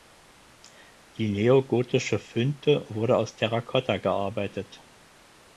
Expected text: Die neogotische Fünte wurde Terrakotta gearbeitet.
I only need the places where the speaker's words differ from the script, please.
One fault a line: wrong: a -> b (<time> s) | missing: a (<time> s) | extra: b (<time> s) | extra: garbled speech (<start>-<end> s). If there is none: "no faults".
extra: aus (3.2 s)